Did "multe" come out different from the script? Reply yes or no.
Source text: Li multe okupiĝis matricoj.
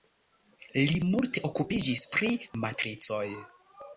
no